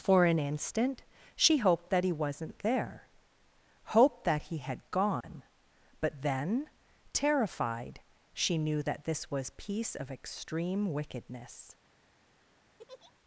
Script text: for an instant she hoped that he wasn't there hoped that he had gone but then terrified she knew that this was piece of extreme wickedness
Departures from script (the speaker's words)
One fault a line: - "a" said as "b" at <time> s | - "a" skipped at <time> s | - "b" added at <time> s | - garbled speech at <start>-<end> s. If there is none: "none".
none